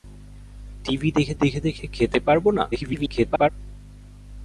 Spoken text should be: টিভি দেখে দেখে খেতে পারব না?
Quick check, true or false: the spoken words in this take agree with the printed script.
false